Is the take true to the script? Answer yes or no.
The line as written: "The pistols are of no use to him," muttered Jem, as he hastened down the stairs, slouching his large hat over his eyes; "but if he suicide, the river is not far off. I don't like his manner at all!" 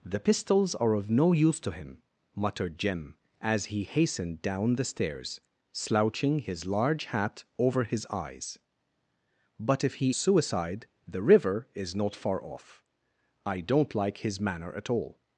yes